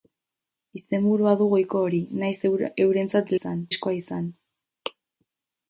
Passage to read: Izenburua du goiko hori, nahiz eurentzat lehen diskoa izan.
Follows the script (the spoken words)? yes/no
no